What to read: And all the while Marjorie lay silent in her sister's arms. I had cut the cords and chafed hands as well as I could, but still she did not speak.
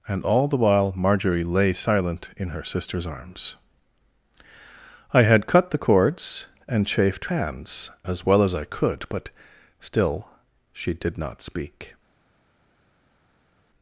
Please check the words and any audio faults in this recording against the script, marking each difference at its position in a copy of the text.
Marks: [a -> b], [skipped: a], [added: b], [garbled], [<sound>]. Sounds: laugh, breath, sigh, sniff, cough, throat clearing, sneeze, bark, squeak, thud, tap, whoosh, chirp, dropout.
And all the while Marjorie lay silent in her sister's arms. I had cut the cords and chafed hands as well as I could, but still she did not speak.